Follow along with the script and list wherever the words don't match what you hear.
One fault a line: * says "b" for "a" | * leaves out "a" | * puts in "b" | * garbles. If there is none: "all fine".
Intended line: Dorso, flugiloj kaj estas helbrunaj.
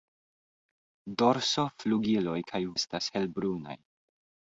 all fine